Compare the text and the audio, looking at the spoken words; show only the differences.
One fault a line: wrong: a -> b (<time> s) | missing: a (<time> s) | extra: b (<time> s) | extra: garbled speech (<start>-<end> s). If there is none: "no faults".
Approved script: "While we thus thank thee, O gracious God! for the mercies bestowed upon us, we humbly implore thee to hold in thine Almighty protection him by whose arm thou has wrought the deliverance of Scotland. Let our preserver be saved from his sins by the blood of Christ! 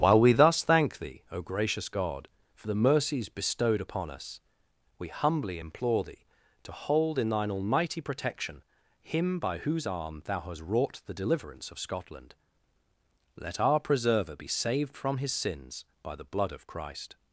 wrong: has -> hast (10.4 s)